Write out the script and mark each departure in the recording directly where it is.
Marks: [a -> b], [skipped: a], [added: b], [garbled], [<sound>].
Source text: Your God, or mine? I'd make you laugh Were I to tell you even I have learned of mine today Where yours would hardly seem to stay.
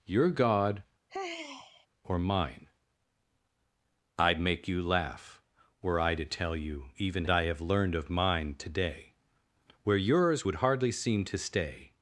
Your God, [sigh] or mine? I'd make you laugh Were I to tell you even I have learned of mine today Where yours would hardly seem to stay.